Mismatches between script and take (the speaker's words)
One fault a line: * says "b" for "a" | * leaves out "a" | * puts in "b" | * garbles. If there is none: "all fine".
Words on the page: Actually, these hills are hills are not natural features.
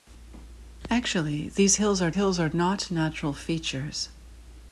all fine